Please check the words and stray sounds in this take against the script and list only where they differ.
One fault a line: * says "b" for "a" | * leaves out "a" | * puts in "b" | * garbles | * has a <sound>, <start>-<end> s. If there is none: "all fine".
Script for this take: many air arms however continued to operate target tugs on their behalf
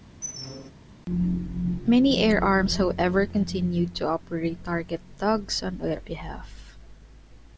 * has a squeak, 0.2-0.7 s